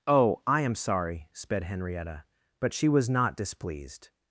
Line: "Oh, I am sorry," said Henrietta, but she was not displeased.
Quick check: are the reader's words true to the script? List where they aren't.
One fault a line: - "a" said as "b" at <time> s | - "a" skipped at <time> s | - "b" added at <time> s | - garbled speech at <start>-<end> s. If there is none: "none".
- "said" said as "sped" at 1.3 s